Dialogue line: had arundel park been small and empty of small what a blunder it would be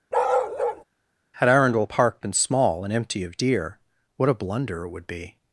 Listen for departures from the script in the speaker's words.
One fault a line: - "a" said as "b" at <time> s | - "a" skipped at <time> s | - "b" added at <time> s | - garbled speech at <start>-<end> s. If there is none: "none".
- "small" said as "deer" at 3.4 s